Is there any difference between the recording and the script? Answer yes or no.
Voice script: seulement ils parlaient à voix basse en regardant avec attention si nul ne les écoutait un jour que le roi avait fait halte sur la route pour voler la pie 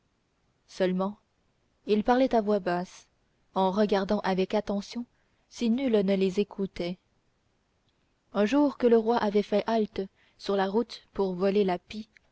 no